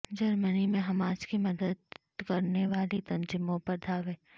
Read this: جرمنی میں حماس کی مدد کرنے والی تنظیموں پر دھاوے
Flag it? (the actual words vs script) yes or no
no